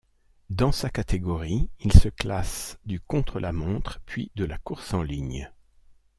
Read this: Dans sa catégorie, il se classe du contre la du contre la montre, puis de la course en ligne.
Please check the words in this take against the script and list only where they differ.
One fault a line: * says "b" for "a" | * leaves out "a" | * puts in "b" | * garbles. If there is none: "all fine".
* leaves out "du contre la"